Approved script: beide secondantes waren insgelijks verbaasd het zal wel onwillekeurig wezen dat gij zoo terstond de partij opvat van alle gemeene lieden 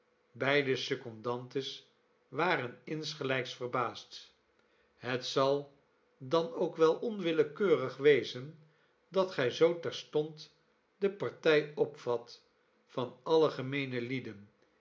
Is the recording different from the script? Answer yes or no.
yes